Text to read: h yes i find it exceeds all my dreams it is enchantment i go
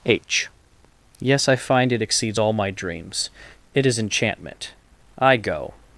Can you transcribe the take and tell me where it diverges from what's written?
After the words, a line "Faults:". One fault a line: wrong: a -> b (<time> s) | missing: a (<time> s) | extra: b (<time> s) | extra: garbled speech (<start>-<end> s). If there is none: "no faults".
h yes i find it exceeds all my dreams it is enchantment i go
Faults:
no faults